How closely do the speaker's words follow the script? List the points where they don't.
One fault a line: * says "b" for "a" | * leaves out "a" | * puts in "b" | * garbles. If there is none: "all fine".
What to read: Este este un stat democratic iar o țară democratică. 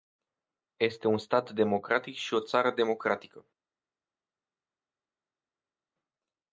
* leaves out "este"
* says "și" for "iar"